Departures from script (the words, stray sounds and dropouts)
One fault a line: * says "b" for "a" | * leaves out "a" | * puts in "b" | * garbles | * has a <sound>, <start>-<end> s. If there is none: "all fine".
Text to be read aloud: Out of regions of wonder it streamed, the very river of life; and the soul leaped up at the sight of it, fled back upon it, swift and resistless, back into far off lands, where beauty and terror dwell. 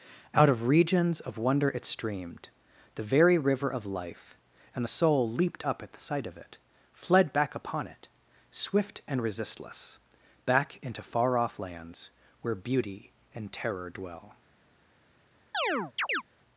* has a chirp, 15.5-16.2 s